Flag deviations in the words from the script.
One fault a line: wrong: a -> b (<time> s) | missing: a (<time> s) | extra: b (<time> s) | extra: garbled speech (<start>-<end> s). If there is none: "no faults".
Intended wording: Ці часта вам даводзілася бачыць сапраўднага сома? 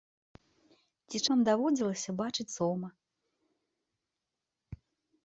missing: часта (1.2 s)
missing: сапраўднага (2.5 s)